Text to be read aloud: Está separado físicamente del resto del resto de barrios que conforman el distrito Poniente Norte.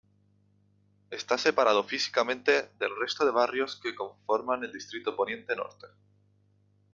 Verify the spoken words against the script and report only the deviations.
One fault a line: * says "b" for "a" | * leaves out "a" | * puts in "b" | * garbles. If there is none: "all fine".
* leaves out "del resto"